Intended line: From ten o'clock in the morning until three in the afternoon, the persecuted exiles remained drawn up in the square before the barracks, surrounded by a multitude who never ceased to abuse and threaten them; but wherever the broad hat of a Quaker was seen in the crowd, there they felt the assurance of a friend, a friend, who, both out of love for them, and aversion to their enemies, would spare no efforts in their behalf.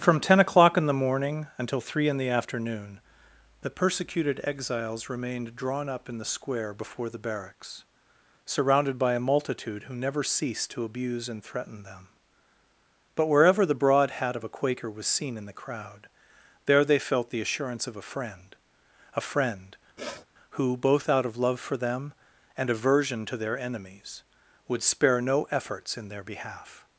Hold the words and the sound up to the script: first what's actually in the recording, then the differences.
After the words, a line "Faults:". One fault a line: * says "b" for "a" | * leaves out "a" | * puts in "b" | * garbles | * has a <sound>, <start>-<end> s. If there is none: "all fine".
From ten o'clock in the morning until three in the afternoon, the persecuted exiles remained drawn up in the square before the barracks, surrounded by a multitude who never ceased to abuse and threaten them; but wherever the broad hat of a Quaker was seen in the crowd, there they felt the assurance of a friend, a friend, who, both out of love for them, and aversion to their enemies, would spare no efforts in their behalf.
Faults:
* has a sniff, 20.0-20.3 s